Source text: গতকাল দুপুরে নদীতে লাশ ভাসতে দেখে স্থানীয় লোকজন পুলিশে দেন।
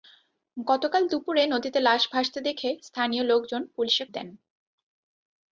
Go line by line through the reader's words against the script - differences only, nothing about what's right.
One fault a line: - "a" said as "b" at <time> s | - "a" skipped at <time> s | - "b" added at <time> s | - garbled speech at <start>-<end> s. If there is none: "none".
none